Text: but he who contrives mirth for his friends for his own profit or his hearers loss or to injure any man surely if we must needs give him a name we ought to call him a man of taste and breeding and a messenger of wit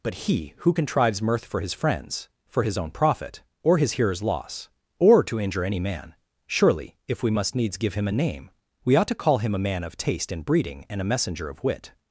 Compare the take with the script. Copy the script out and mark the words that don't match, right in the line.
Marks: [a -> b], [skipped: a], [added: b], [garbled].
but he who contrives mirth for his friends for his own profit or his hearers loss or to injure any man surely if we must needs give him a name we ought to call him a man of taste and breeding and a messenger of wit